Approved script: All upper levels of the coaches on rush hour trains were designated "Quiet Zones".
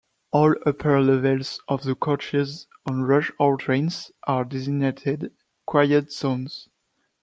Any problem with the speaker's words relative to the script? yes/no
yes